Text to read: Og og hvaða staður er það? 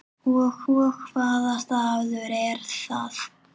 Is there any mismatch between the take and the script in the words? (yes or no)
no